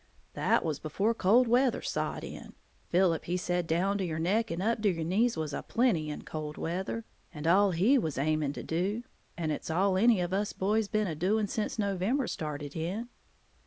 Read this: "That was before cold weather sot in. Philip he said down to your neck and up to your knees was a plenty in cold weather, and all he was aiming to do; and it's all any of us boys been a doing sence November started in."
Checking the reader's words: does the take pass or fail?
pass